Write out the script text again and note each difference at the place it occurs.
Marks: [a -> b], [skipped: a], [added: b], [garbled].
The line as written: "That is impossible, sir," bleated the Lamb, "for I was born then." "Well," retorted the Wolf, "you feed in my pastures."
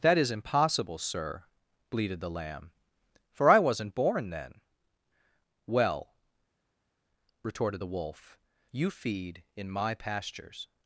"That is impossible, sir," bleated the Lamb, "for I [was -> wasn't] born then." "Well," retorted the Wolf, "you feed in my pastures."